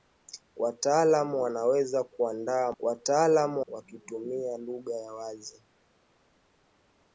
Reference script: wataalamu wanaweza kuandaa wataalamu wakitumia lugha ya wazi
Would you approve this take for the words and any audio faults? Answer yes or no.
yes